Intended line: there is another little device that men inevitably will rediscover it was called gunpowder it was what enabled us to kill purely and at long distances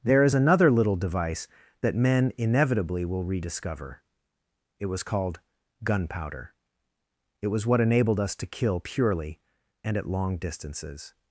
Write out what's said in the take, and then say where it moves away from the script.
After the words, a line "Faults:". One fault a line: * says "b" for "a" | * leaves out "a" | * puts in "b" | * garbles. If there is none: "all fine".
there is another little device that men inevitably will rediscover it was called gunpowder it was what enabled us to kill purely and at long distances
Faults:
all fine